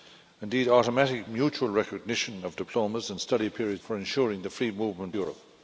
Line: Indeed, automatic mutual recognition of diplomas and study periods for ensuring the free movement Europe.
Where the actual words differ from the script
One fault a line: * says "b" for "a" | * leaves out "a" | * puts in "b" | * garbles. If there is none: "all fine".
all fine